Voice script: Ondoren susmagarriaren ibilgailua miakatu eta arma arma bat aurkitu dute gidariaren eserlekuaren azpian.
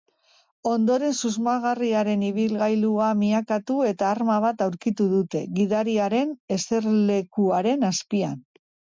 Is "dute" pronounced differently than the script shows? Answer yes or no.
no